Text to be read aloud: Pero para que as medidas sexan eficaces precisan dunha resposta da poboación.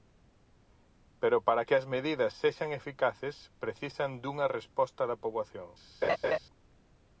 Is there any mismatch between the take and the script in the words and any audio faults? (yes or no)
yes